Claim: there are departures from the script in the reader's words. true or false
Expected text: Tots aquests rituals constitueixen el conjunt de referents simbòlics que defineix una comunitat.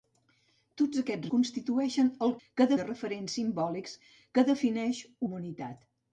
true